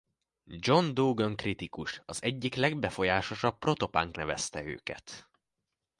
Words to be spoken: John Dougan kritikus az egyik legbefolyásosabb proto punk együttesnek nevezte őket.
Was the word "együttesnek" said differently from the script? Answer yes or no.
yes